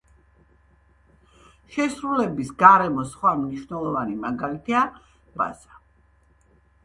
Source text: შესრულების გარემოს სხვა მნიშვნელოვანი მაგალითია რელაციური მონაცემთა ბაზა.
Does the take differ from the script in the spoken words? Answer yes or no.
yes